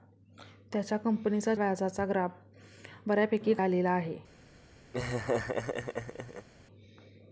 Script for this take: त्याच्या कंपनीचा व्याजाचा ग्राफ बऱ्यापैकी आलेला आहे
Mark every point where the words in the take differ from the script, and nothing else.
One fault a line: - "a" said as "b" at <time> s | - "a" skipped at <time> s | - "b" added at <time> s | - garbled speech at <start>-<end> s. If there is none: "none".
none